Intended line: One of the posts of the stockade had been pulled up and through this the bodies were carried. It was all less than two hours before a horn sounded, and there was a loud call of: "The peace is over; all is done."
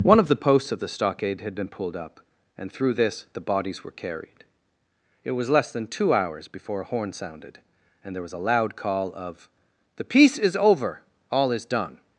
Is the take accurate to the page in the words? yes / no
no